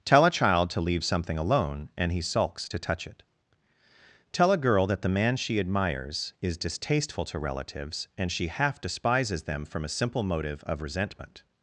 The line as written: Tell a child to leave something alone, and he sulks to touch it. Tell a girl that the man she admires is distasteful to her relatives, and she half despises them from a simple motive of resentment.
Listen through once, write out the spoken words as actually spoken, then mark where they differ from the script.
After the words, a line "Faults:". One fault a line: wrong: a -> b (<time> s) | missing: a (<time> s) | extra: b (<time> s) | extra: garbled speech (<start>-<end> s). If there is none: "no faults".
Tell a child to leave something alone, and he sulks to touch it. Tell a girl that the man she admires is distasteful to relatives, and she half despises them from a simple motive of resentment.
Faults:
missing: her (7.4 s)